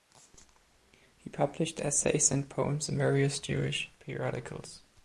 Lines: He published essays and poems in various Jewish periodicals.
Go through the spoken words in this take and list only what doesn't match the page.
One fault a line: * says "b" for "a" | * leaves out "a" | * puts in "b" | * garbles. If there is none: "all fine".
all fine